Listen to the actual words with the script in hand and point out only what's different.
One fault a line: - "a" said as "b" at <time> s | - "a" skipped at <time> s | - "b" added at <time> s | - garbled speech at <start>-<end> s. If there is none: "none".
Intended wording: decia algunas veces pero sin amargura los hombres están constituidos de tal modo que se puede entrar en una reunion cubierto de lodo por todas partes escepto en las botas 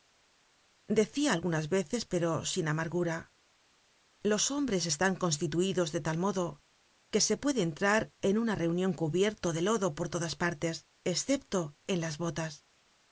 none